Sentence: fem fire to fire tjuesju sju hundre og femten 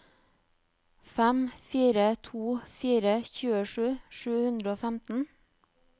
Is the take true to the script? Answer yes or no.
yes